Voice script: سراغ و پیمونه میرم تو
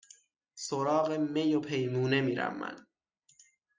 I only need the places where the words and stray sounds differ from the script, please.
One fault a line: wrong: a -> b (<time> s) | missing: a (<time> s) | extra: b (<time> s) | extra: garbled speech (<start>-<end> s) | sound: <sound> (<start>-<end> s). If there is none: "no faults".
extra: می (1.1 s)
wrong: تو -> من (2.6 s)